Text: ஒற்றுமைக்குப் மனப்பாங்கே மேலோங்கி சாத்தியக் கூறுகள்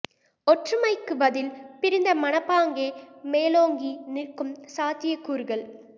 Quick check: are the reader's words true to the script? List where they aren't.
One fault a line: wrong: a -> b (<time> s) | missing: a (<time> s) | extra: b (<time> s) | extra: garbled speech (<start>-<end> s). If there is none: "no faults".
extra: பதில் பிரிந்த (1.2 s)
extra: நிற்கும் (4.1 s)